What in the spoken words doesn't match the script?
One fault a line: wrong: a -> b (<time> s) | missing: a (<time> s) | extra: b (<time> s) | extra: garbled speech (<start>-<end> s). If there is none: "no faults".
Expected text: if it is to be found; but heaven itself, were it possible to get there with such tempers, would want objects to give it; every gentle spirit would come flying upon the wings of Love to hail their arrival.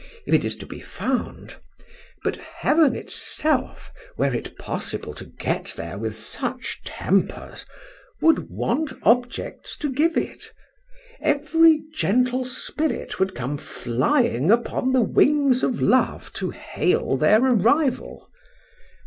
no faults